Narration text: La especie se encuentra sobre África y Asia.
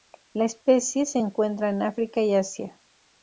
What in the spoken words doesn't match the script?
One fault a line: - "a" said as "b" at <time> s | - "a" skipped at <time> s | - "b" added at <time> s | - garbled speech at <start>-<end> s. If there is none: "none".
- "sobre" said as "en" at 1.7 s